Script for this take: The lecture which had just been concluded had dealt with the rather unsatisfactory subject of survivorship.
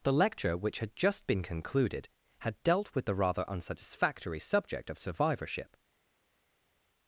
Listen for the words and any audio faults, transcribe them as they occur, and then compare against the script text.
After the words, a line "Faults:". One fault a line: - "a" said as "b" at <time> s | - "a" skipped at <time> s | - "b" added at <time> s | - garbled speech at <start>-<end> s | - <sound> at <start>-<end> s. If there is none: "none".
The lecture which had just been concluded had dealt with the rather unsatisfactory subject of survivorship.
Faults:
none